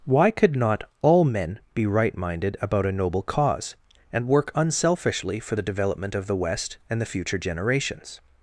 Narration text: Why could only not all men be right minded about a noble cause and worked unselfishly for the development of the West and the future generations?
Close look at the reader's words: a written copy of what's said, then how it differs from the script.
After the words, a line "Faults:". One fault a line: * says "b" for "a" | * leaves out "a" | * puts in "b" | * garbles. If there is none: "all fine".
Why could not all men be right minded about a noble cause and work unselfishly for the development of the West and the future generations?
Faults:
* leaves out "only"
* says "work" for "worked"